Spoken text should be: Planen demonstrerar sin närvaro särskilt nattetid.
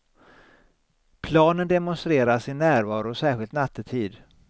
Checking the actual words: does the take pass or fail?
pass